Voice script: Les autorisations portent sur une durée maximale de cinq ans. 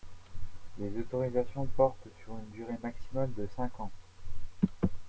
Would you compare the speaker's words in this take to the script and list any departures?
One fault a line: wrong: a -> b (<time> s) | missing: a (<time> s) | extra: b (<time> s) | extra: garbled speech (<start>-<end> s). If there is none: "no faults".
no faults